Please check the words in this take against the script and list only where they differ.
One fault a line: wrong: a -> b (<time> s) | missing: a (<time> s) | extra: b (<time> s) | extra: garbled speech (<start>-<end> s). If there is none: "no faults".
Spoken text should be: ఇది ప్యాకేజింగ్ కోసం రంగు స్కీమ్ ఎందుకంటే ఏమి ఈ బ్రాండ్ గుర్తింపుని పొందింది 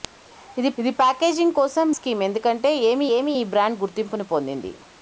extra: ఇది (0.8 s)
missing: రంగు (1.9 s)
extra: ఏమి (3.2 s)